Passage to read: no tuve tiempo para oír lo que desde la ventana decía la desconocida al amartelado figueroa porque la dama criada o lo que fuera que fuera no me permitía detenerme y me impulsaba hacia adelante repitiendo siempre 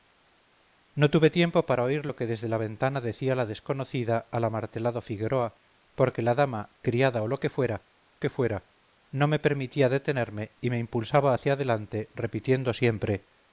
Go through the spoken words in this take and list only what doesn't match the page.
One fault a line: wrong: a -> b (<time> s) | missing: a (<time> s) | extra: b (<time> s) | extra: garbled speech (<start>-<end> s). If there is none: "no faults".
no faults